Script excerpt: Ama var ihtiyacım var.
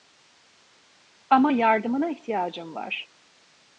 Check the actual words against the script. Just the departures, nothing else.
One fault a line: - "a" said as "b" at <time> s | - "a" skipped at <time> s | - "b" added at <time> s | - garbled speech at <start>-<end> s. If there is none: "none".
- "var" said as "yardımına" at 1.5 s